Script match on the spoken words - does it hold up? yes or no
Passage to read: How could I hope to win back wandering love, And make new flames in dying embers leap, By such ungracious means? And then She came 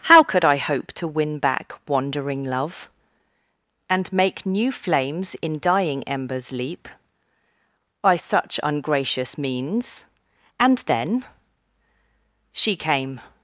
yes